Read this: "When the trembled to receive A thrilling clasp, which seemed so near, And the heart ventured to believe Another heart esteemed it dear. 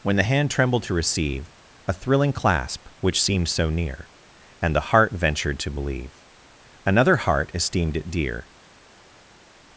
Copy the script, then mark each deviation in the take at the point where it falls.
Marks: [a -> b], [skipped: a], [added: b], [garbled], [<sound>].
"When the [added: hand] trembled to receive A thrilling clasp, which seemed so near, And the heart ventured to believe Another heart esteemed it dear.